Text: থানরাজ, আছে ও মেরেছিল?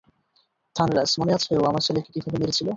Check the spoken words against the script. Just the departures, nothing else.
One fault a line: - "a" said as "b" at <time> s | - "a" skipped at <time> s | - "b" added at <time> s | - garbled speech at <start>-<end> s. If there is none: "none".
- "মনে" added at 1.2 s
- "আমার ছেলেকে কীভাবে" added at 1.7 s